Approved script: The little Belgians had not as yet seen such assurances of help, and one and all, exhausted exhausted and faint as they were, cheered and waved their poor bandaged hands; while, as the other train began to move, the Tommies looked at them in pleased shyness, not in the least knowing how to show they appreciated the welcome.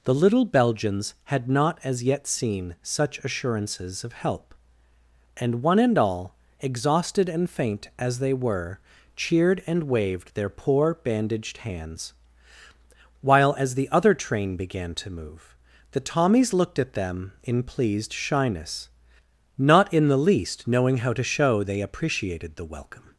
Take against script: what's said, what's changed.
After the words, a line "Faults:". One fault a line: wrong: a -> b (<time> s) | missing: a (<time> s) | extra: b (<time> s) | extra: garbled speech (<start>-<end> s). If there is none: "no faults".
The little Belgians had not as yet seen such assurances of help, and one and all, exhausted and faint as they were, cheered and waved their poor bandaged hands; while, as the other train began to move, the Tommies looked at them in pleased shyness, not in the least knowing how to show they appreciated the welcome.
Faults:
missing: exhausted (7.3 s)